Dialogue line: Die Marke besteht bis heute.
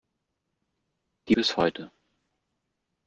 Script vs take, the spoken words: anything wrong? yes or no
yes